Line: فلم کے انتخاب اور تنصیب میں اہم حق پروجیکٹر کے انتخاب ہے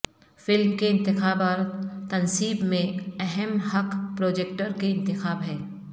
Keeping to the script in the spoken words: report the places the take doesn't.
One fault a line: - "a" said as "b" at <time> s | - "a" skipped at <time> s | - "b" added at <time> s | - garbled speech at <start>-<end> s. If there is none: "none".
none